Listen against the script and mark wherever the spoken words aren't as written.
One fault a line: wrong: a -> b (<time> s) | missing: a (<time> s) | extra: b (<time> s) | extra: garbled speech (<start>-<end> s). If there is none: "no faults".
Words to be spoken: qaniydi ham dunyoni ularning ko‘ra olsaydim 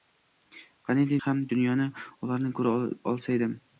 no faults